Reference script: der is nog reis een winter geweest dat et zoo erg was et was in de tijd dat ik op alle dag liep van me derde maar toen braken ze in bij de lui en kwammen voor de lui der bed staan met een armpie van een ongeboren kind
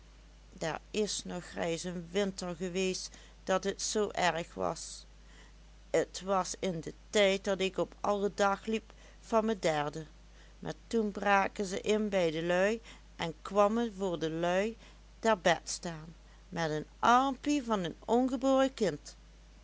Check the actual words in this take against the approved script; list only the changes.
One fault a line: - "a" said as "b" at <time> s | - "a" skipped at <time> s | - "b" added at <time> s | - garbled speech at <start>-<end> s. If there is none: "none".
none